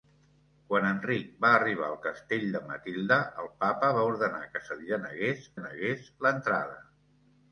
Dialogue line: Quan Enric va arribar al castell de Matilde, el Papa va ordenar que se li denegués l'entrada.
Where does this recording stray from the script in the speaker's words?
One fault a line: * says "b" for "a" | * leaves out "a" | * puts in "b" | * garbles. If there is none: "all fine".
* puts in "denegués"